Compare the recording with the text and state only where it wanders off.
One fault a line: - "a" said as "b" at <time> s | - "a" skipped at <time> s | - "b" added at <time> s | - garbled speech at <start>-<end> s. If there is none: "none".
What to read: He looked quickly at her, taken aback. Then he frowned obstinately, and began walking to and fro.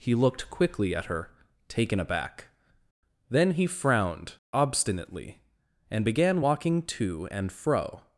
none